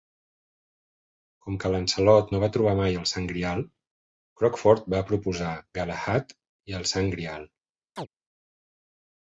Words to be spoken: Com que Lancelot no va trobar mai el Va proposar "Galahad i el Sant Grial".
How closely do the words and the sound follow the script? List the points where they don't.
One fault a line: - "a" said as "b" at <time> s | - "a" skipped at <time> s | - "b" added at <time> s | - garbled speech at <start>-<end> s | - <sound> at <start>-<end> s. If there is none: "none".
- "Sant Grial Crockford" added at 3.1 s
- chirp at 8.0-8.1 s